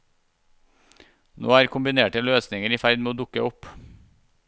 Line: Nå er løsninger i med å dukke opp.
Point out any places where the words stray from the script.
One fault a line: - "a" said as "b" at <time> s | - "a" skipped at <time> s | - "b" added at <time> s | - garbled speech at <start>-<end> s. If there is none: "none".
- "kombinerte" added at 1.7 s
- "ferd" added at 2.8 s